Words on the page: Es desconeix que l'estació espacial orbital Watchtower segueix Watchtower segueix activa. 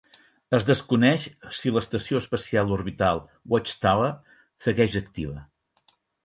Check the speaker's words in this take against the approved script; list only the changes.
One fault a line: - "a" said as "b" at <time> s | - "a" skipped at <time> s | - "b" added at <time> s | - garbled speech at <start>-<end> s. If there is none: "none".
- "que" said as "si" at 1.6 s
- "Watchtower segueix" skipped at 5.0 s